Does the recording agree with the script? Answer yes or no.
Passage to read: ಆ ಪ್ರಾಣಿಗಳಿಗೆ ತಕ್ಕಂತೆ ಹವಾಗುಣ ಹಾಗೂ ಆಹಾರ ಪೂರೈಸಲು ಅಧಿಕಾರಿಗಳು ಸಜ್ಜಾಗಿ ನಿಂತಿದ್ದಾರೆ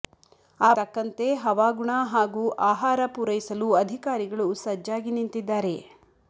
no